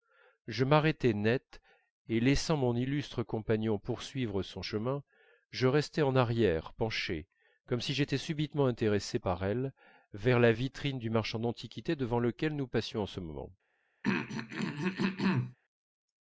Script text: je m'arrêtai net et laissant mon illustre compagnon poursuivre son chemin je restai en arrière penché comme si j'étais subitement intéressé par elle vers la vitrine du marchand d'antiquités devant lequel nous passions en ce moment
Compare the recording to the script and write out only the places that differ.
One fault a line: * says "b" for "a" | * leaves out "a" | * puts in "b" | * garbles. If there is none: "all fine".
all fine